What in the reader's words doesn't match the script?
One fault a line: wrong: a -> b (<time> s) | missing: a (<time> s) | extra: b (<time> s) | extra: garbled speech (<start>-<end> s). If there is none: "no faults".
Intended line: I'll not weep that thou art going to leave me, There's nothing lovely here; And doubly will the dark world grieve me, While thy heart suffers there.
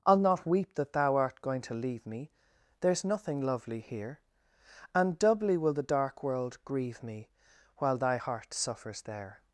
no faults